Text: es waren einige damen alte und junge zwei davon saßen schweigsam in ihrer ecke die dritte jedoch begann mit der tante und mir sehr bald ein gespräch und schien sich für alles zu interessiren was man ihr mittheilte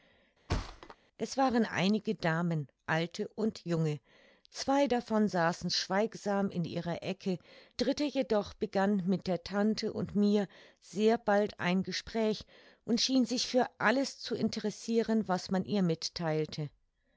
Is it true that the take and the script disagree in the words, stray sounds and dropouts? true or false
true